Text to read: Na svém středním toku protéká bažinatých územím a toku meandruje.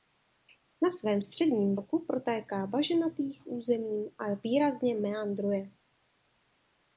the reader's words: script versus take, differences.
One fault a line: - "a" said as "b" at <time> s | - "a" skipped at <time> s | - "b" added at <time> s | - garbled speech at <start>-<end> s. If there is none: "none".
- "toku" said as "výrazně" at 4.3 s